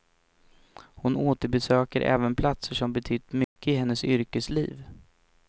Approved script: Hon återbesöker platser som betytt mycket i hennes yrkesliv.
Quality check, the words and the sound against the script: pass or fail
fail